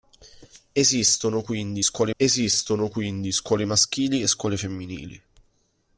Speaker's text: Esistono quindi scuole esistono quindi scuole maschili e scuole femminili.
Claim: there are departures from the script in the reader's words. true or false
false